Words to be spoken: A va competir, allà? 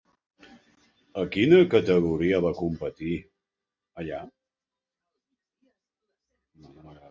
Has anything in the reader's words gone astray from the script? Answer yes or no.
yes